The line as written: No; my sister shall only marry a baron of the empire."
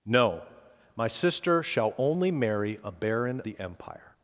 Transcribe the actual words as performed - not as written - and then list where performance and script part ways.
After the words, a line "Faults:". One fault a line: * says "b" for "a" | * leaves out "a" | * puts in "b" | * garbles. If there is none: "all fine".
No; my sister shall only marry a baron the empire."
Faults:
* leaves out "of"